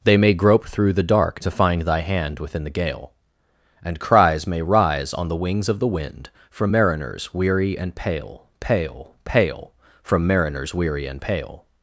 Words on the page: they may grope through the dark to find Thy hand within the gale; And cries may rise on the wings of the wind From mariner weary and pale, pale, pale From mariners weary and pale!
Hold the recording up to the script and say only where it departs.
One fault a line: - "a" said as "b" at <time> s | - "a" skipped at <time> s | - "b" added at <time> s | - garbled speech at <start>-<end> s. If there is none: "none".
- "mariner" said as "mariners" at 6.7 s